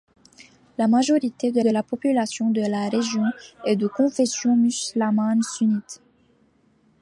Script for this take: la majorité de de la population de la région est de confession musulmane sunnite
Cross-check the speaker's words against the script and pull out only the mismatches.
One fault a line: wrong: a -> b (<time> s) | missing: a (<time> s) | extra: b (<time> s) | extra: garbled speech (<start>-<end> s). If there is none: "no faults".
no faults